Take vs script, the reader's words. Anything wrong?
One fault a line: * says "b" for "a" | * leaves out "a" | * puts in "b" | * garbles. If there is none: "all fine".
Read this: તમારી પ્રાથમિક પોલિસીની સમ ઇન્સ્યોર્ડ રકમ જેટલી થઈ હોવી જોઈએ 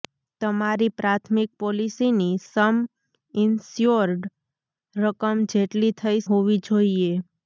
all fine